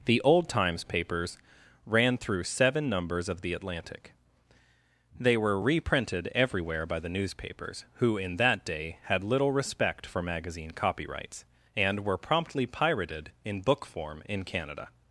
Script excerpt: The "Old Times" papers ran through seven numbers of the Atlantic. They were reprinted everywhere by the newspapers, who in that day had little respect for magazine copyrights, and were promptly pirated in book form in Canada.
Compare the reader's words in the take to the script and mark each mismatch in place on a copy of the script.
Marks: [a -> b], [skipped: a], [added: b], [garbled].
The "Old Times" papers ran through seven numbers of the Atlantic. They were reprinted everywhere by the newspapers, who in that day had little respect for magazine copyrights, and were promptly pirated in book form in Canada.